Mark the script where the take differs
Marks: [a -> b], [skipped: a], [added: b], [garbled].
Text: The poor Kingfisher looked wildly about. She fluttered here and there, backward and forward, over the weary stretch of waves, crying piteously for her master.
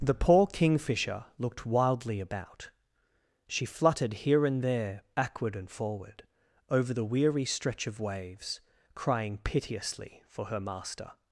The poor Kingfisher looked wildly about. She fluttered here and there, backward and forward, over the weary stretch of waves, crying piteously for her master.